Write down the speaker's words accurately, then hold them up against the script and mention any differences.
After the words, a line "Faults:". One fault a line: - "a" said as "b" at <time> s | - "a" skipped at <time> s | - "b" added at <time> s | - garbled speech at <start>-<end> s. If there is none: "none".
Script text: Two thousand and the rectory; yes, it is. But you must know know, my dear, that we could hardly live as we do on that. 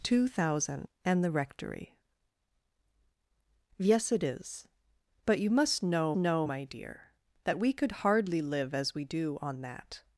Two thousand and the rectory; yes, it is. But you must know know, my dear, that we could hardly live as we do on that.
Faults:
none